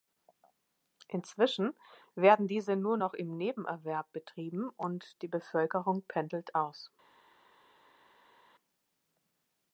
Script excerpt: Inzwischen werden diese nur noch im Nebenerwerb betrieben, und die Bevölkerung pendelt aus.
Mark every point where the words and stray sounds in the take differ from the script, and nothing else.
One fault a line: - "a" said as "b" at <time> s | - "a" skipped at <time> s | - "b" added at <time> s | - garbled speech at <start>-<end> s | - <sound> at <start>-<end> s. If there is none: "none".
none